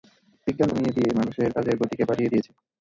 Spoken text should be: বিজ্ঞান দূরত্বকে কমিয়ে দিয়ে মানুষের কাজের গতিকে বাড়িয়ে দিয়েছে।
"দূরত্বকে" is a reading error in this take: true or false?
true